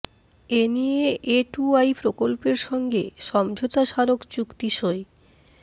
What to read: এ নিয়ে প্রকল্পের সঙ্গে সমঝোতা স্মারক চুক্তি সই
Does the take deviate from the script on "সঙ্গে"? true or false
false